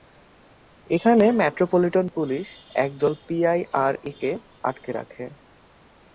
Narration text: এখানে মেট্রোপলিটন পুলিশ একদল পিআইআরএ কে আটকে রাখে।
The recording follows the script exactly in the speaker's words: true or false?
true